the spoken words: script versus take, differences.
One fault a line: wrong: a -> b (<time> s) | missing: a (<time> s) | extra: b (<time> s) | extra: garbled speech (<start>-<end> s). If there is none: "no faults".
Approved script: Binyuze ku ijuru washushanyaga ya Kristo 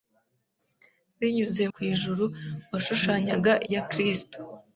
no faults